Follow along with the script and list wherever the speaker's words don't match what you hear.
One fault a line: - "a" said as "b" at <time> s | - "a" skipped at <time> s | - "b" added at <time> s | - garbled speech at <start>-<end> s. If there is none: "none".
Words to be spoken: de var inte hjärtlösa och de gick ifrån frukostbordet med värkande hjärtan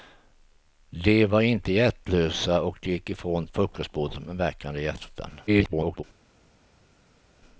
- garbled speech at 5.5-6.0 s